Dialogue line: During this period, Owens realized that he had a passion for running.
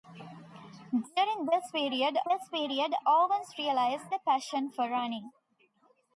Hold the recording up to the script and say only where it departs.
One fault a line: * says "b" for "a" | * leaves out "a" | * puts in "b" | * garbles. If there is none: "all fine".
* puts in "this period"
* leaves out "that he had"